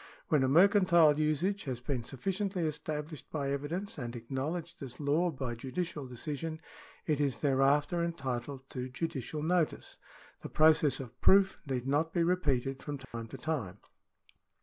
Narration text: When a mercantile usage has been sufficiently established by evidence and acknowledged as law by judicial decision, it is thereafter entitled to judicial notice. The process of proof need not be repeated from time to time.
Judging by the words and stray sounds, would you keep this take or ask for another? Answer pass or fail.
fail